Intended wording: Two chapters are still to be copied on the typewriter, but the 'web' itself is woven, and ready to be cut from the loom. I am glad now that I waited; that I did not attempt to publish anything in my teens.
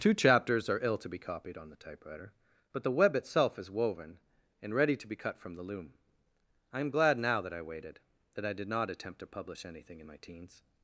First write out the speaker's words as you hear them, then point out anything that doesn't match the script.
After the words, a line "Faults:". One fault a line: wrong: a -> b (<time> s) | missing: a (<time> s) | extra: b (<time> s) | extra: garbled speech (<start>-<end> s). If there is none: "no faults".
Two chapters are ill to be copied on the typewriter, but the 'web' itself is woven, and ready to be cut from the loom. I am glad now that I waited; that I did not attempt to publish anything in my teens.
Faults:
wrong: still -> ill (0.8 s)